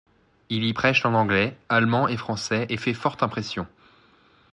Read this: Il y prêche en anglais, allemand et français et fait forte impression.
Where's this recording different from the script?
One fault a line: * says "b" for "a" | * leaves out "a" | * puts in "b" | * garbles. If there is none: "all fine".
all fine